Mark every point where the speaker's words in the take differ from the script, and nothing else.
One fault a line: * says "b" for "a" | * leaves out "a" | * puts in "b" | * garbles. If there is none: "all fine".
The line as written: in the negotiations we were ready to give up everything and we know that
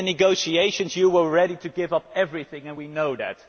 * says "you" for "we"